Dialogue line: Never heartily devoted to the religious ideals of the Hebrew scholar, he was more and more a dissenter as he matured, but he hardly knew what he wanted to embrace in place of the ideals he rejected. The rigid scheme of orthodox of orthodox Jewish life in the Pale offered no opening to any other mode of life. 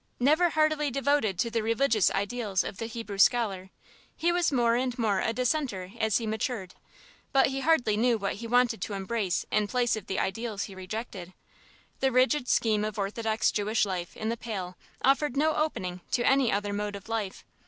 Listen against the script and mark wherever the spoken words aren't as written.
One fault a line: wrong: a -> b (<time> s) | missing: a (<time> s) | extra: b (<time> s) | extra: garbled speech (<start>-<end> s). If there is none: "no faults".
missing: of orthodox (13.5 s)